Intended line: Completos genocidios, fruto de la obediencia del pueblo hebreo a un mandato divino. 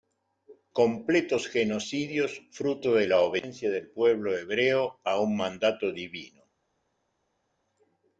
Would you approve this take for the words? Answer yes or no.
yes